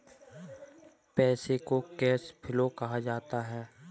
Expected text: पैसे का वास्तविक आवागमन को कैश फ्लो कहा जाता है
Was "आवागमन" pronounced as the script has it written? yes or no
no